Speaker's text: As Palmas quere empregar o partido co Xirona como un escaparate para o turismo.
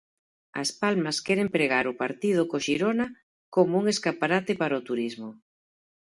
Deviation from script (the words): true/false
false